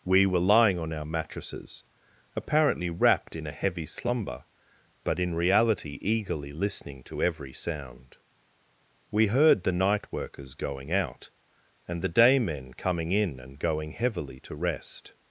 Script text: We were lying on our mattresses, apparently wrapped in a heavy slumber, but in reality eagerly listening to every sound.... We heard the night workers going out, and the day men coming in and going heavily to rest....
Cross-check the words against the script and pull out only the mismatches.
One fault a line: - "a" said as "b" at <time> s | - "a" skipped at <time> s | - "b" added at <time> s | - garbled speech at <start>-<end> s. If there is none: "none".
none